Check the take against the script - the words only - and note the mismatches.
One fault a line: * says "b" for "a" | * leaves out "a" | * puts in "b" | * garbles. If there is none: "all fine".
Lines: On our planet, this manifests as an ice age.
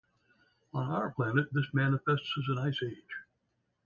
all fine